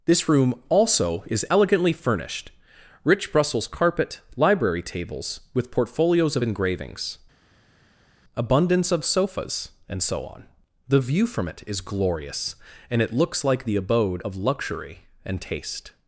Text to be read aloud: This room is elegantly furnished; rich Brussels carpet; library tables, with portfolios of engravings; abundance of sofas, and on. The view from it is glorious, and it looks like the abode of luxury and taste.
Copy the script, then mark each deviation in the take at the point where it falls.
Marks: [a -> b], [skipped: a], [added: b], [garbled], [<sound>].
This room [added: also] is elegantly furnished; rich Brussels carpet; library tables, with portfolios of engravings; abundance of sofas, and [added: so] on. The view from it is glorious, and it looks like the abode of luxury and taste.